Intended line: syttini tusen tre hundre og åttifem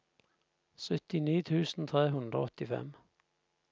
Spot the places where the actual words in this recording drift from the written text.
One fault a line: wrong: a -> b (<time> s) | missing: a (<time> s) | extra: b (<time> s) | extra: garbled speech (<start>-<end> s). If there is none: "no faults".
no faults